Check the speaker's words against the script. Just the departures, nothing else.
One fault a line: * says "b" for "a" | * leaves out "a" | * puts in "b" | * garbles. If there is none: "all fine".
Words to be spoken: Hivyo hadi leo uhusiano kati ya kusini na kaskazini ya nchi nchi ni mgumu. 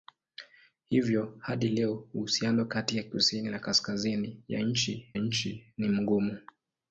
all fine